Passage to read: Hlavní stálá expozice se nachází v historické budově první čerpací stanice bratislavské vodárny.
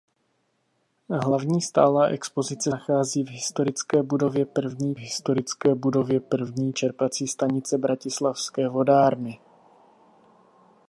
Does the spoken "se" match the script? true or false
false